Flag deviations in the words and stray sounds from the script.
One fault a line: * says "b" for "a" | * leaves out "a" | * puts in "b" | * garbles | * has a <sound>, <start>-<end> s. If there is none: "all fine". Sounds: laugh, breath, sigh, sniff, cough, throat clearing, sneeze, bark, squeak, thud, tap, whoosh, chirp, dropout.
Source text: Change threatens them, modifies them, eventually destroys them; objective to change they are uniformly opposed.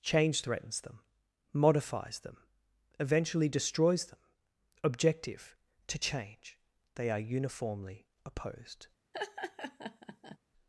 * has a laugh, 9.1-10.4 s